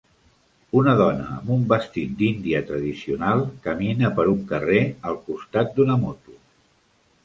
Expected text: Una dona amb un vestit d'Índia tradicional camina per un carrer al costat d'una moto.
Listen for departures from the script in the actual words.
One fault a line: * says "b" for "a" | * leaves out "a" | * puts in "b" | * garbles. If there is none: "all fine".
all fine